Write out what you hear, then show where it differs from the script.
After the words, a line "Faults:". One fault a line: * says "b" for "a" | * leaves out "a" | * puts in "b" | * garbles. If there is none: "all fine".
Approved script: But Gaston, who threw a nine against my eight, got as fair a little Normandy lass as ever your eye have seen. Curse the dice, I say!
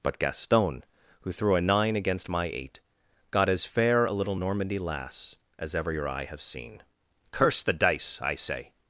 But Gaston, who threw a nine against my eight, got as fair a little Normandy lass as ever your eye have seen. Curse the dice, I say!
Faults:
all fine